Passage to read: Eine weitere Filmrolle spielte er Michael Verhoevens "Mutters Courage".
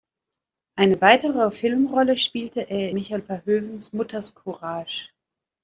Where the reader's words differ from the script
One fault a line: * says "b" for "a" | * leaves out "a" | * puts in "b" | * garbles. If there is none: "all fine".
all fine